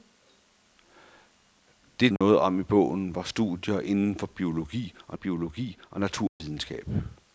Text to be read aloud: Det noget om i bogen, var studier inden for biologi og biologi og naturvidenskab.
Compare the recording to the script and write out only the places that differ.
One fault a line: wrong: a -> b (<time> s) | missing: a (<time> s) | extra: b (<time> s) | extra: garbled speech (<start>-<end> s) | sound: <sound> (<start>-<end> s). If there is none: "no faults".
sound: dropout (2.2-2.2 s)
sound: dropout (6.3-6.4 s)